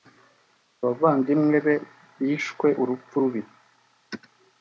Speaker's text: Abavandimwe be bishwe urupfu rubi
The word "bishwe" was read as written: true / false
true